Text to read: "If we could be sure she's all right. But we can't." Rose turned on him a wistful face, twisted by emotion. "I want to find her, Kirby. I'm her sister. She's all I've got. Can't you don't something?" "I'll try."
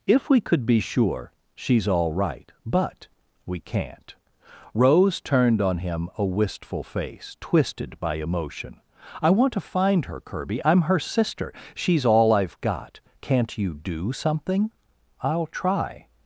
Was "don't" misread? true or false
true